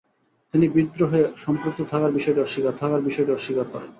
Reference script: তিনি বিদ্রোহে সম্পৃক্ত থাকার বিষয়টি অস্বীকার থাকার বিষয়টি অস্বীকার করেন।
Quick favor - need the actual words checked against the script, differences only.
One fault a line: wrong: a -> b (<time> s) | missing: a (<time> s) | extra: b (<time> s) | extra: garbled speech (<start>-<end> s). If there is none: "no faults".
no faults